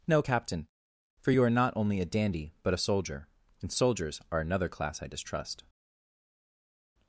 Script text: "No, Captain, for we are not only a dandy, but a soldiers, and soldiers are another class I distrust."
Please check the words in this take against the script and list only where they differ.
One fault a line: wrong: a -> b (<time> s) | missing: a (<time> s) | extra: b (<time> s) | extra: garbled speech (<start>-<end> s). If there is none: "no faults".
wrong: we -> you (1.3 s)
wrong: soldiers -> soldier (2.8 s)